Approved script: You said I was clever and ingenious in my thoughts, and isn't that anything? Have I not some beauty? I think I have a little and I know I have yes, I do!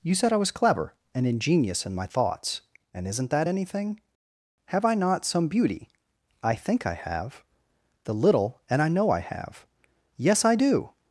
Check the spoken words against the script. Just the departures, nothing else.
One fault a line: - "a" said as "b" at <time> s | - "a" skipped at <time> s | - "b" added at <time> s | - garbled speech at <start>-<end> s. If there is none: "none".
- "a" said as "the" at 8.0 s